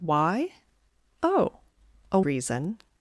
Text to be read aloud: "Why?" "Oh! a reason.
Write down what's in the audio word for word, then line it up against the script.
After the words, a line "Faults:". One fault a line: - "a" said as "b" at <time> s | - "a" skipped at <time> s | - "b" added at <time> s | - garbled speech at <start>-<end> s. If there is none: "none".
"Why?" "Oh! a reason.
Faults:
none